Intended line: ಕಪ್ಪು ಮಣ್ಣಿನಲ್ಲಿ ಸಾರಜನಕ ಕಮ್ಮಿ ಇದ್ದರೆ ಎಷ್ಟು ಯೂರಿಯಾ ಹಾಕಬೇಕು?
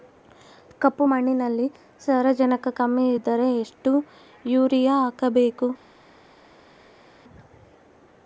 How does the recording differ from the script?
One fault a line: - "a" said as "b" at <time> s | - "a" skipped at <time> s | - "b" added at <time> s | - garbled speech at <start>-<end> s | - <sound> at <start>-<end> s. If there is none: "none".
none